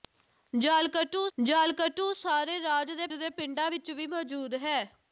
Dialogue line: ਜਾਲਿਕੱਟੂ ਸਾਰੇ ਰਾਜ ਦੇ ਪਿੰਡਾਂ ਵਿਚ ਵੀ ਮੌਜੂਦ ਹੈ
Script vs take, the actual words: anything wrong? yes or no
yes